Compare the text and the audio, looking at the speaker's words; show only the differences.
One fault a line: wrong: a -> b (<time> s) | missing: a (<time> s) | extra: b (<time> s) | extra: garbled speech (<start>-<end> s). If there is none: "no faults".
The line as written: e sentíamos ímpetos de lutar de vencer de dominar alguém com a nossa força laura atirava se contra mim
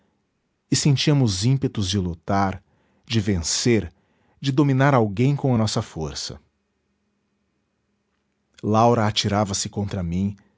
no faults